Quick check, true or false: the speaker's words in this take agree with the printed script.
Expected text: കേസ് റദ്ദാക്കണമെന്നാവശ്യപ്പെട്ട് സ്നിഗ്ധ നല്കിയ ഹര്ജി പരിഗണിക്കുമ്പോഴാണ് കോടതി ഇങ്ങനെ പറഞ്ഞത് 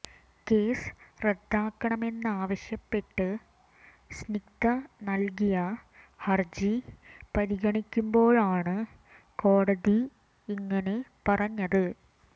true